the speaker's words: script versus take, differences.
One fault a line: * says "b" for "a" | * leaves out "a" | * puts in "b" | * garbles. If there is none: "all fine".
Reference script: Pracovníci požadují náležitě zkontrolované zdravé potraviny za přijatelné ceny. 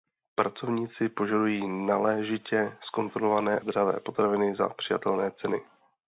all fine